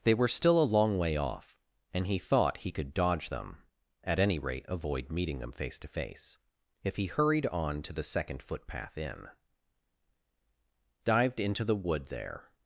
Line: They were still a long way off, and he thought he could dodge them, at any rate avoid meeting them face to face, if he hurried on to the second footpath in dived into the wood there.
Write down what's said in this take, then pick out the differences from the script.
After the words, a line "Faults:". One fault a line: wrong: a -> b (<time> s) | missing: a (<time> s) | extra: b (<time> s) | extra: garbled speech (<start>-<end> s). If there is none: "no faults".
They were still a long way off, and he thought he could dodge them, at any rate avoid meeting them face to face, if he hurried on to the second footpath in dived into the wood there.
Faults:
no faults